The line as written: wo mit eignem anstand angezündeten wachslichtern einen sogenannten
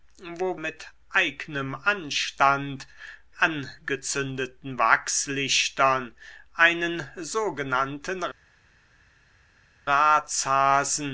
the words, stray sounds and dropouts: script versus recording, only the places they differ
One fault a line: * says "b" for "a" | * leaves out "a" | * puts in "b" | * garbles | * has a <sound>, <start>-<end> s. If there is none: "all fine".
all fine